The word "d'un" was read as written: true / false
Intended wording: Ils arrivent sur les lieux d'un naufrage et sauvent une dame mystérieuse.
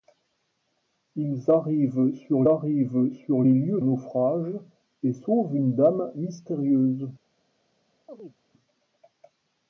false